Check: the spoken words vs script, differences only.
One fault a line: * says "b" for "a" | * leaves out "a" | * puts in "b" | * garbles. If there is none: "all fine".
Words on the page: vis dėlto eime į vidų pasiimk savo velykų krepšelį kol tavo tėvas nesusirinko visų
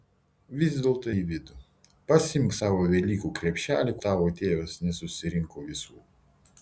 * leaves out "eime"
* leaves out "kol"